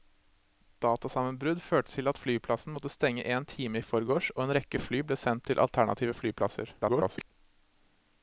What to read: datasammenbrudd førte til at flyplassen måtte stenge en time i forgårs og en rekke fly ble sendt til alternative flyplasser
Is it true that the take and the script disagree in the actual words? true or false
true